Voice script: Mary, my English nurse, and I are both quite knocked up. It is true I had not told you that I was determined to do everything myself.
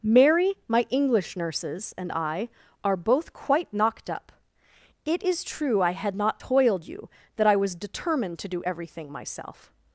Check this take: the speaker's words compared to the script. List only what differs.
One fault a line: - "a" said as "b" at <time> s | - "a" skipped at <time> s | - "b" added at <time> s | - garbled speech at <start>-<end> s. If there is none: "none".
- "nurse" said as "nurses" at 1.4 s
- "told" said as "toiled" at 6.4 s